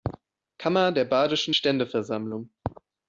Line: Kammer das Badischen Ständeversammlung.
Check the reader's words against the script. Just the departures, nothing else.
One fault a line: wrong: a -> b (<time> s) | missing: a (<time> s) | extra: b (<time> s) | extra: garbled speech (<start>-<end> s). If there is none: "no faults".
wrong: das -> der (0.9 s)